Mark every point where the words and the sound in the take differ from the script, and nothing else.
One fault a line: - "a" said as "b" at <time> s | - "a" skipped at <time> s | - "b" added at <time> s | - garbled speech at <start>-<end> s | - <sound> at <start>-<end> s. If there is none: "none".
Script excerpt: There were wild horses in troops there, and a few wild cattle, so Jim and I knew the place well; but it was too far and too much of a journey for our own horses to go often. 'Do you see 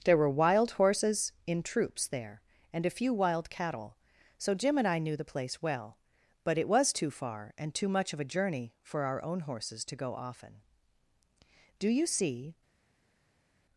none